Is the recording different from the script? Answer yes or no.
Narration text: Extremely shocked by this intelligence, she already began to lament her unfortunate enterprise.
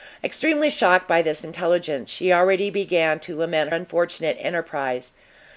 yes